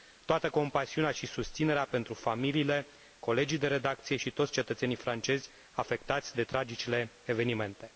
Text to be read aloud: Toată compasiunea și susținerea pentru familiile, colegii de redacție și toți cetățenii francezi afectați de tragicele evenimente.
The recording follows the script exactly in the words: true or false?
true